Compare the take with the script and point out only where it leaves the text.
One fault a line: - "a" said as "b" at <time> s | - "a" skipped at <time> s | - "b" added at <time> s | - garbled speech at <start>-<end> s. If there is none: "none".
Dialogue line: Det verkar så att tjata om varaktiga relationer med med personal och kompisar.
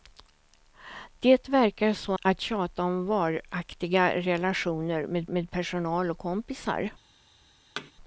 none